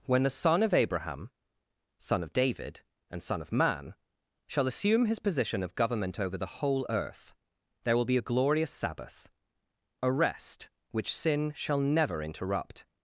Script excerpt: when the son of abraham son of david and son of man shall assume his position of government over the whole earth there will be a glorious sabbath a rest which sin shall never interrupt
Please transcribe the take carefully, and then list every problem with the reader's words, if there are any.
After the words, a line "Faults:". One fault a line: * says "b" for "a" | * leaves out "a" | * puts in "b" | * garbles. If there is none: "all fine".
when the son of abraham son of david and son of man shall assume his position of government over the whole earth there will be a glorious sabbath a rest which sin shall never interrupt
Faults:
all fine